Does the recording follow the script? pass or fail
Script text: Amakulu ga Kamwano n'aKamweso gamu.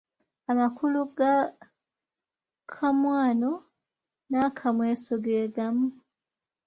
fail